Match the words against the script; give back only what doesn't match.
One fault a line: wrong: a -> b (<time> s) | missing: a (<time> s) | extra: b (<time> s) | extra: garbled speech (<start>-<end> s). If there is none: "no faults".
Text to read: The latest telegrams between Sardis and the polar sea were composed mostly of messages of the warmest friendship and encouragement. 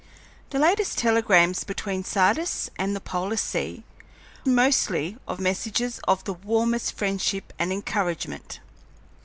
missing: were composed (3.8 s)